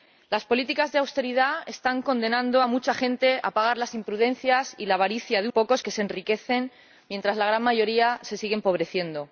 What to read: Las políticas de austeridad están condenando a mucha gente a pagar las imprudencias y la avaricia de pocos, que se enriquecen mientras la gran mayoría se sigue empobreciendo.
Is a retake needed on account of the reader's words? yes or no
no